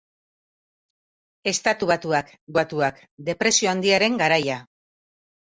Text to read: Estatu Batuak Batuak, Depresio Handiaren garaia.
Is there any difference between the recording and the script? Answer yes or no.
no